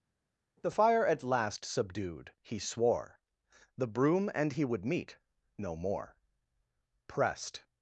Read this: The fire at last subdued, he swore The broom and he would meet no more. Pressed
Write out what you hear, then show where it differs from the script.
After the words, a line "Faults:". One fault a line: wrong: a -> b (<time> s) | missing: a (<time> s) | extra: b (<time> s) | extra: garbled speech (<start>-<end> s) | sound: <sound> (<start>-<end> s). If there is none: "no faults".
The fire at last subdued, he swore The broom and he would meet no more. Pressed
Faults:
no faults